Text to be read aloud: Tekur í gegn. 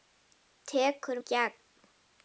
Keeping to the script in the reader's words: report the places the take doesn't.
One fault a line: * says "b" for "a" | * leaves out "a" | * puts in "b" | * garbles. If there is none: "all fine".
all fine